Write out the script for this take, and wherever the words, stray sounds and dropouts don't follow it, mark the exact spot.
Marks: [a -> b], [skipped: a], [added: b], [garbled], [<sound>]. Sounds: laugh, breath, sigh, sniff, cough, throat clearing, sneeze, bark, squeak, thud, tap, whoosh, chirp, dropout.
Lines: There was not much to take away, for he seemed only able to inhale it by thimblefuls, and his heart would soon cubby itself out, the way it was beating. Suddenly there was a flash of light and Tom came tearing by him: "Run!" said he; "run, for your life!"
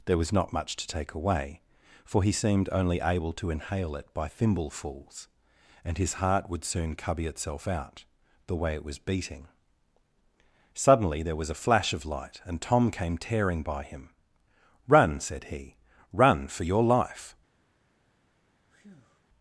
There was not much to take away, for he seemed only able to inhale it by thimblefuls, and his heart would soon cubby itself out, the way it was beating. Suddenly there was a flash of light and Tom came tearing by him: "Run!" said he; "run, for your life!" [breath]